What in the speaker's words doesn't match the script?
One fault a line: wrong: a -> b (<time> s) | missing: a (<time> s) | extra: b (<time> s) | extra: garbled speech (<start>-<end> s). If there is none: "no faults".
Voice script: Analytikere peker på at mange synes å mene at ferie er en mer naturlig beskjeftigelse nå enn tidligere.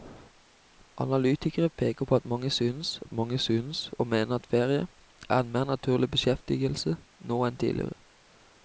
extra: at mange synes (3.0 s)